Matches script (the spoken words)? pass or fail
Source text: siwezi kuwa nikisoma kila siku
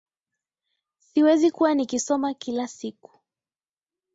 pass